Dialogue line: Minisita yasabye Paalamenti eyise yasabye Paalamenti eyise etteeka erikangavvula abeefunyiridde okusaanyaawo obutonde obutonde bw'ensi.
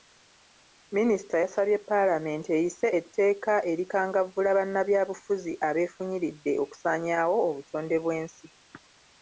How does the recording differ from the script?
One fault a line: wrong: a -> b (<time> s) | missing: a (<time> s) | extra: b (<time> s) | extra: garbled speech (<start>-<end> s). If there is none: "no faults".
missing: yasabye Paalamenti eyise (2.9 s)
extra: bannabyabufuzi (4.6 s)
missing: obutonde (8.0 s)